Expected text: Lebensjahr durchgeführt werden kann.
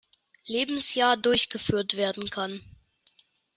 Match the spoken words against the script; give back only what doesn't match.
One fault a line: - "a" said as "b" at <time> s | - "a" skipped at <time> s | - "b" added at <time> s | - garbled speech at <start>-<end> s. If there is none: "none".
none